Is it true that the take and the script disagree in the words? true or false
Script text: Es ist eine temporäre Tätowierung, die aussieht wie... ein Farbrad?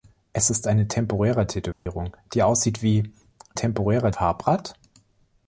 true